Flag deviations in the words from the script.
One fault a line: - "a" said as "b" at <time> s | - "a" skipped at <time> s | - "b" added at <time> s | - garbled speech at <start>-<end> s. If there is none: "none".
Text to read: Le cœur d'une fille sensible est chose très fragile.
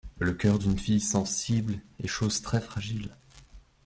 none